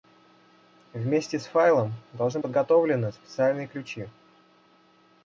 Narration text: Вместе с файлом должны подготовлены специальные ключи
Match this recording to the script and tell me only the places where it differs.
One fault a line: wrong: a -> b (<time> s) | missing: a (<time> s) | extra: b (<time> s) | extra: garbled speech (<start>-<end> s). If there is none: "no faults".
no faults